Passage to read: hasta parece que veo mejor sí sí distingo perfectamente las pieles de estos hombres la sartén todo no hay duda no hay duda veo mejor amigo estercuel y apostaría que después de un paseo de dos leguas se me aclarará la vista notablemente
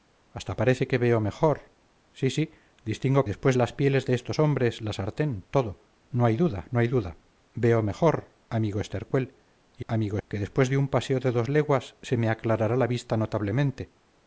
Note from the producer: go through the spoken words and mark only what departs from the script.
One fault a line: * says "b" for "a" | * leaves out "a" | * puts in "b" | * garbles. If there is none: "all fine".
* says "después" for "perfectamente"
* says "amigo" for "apostaría"